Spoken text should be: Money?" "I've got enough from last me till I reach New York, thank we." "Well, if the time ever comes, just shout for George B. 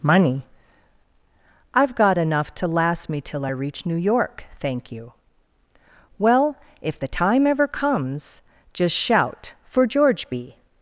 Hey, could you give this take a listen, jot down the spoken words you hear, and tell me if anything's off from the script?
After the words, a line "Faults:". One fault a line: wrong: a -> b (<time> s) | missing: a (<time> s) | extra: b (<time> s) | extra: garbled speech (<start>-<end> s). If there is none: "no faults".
Money?" "I've got enough to last me till I reach New York, thank you." "Well, if the time ever comes, just shout for George B.
Faults:
wrong: from -> to (2.5 s)
wrong: we -> you (4.9 s)